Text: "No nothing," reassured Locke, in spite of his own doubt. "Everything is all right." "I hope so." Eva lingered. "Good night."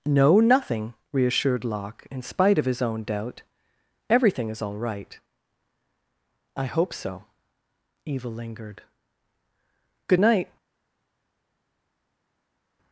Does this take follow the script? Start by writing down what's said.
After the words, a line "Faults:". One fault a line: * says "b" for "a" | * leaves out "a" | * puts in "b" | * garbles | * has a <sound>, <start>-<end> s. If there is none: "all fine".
"No nothing," reassured Locke, in spite of his own doubt. "Everything is all right." "I hope so." Eva lingered. "Good night."
Faults:
all fine